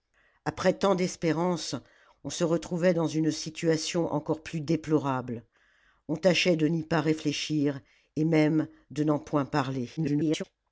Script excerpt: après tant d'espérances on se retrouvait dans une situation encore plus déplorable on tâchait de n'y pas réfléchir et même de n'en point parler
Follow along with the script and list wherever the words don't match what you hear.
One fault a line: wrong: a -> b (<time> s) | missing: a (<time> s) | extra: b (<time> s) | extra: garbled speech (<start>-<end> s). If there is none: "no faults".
extra: garbled speech (10.0-10.4 s)